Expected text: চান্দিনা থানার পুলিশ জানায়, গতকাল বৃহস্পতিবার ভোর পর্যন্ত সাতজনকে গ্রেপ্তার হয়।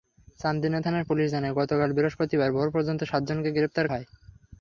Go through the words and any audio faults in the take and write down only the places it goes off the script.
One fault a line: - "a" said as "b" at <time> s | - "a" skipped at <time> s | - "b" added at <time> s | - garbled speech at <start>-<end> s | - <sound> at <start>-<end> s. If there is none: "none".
none